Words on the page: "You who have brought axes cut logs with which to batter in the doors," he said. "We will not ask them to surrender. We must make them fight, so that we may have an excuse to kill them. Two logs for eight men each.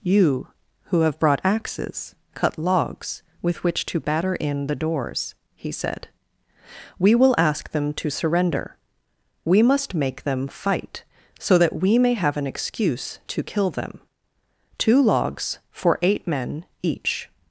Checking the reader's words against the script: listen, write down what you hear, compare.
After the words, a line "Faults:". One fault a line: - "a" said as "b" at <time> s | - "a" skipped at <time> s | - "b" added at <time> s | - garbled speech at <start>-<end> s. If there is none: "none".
"You who have brought axes cut logs with which to batter in the doors," he said. "We will ask them to surrender. We must make them fight, so that we may have an excuse to kill them. Two logs for eight men each.
Faults:
- "not" skipped at 7.3 s